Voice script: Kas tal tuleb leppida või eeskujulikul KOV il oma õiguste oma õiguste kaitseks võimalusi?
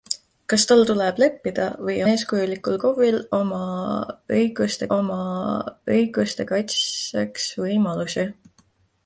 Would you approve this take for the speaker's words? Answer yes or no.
yes